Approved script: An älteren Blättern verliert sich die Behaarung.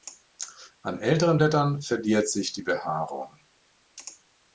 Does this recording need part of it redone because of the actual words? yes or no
no